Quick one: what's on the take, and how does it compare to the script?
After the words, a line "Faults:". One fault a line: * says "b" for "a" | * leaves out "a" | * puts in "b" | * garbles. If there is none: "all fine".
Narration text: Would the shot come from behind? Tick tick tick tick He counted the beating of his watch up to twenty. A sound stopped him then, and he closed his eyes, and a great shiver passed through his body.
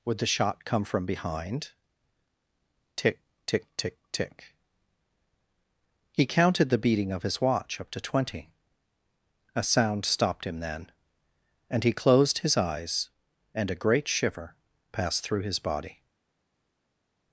Would the shot come from behind? Tick tick tick tick He counted the beating of his watch up to twenty. A sound stopped him then, and he closed his eyes, and a great shiver passed through his body.
Faults:
all fine